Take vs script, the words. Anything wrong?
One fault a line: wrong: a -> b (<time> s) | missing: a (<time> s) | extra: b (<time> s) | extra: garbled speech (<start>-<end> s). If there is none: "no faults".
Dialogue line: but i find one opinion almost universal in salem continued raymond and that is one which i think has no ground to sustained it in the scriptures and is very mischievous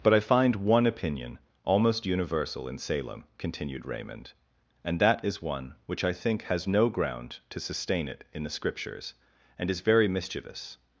wrong: sustained -> sustain (7.6 s)